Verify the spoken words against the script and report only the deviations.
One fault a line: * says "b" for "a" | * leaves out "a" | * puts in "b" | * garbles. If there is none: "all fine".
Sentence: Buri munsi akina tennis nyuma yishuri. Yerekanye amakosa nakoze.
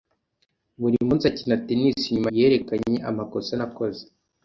* leaves out "yishuri"